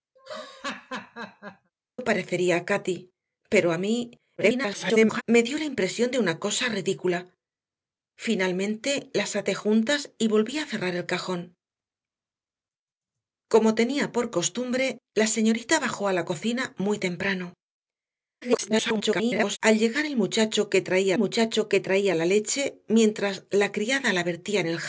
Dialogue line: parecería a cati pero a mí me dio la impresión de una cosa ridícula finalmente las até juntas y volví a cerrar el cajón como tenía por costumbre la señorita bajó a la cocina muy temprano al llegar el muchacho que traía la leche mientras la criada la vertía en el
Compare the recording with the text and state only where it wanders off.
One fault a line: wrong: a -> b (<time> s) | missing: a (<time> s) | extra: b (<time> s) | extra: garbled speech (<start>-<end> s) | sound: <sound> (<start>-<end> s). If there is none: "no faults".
sound: laugh (0.2-1.7 s)
extra: garbled speech (4.4-5.2 s)
extra: garbled speech (18.4-19.6 s)
extra: muchacho que traía (21.2 s)